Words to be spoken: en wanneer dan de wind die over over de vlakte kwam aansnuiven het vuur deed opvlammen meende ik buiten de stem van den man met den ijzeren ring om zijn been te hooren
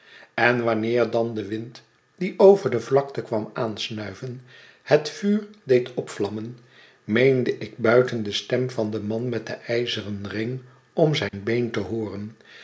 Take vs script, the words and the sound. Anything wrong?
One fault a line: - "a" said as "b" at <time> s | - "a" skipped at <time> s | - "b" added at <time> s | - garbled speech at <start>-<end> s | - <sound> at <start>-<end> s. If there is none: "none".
- "over" skipped at 2.7 s
- dropout at 11.3-11.3 s